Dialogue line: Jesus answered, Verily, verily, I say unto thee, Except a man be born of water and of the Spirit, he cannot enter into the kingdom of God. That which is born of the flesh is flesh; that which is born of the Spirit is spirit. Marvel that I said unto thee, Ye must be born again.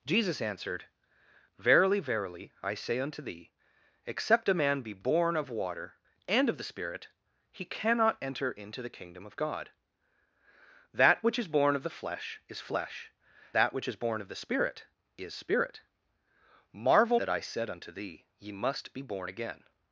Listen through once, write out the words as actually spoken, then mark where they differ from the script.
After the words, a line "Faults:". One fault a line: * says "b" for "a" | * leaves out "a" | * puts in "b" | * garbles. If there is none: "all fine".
Jesus answered, Verily, verily, I say unto thee, Except a man be born of water and of the Spirit, he cannot enter into the kingdom of God. That which is born of the flesh is flesh; that which is born of the Spirit is spirit. Marvel that I said unto thee, Ye must be born again.
Faults:
all fine